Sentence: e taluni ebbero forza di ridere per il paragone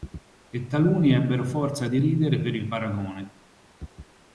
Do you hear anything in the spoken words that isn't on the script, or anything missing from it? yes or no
no